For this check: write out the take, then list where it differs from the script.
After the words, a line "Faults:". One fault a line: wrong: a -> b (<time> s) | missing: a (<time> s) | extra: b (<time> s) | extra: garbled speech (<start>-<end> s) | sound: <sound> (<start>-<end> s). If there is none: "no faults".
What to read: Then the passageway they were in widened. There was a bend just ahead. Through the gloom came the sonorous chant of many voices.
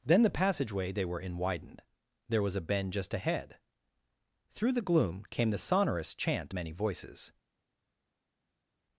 Then the passageway they were in widened. There was a bend just ahead. Through the gloom came the sonorous chant many voices.
Faults:
missing: of (6.5 s)